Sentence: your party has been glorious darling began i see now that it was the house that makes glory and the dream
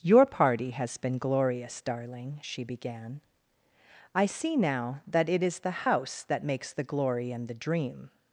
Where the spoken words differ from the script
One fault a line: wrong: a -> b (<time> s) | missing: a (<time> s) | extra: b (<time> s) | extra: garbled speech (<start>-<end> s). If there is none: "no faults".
extra: she (2.4 s)
wrong: was -> is (5.4 s)
extra: the (6.7 s)